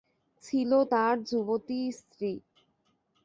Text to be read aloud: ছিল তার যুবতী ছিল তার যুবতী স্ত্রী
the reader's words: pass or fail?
fail